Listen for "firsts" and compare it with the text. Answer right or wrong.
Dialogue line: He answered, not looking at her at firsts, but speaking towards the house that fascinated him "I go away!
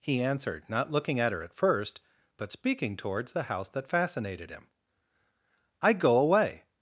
wrong